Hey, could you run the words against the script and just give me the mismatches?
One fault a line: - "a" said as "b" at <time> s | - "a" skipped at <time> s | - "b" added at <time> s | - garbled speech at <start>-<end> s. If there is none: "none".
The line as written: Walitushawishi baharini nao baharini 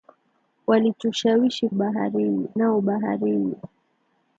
none